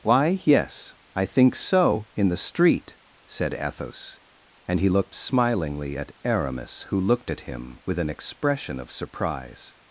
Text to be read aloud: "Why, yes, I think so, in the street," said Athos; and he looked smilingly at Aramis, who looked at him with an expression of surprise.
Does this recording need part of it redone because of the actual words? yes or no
no